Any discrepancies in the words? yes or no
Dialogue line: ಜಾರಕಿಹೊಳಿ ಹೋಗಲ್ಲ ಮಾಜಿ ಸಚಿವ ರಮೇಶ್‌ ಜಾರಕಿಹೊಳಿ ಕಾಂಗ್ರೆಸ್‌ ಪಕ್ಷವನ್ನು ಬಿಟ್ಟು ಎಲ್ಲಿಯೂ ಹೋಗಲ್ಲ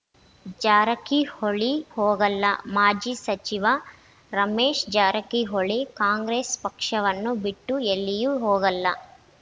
no